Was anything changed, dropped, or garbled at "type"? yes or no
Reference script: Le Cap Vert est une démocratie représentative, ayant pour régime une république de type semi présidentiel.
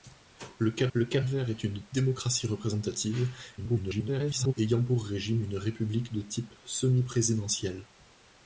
no